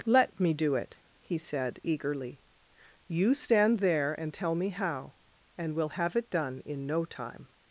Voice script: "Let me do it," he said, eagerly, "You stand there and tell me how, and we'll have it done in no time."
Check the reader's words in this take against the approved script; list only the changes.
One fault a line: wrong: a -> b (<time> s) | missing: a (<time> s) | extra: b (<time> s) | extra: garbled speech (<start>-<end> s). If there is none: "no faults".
no faults